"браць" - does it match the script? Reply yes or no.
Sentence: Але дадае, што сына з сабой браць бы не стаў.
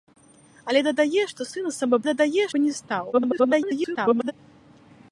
no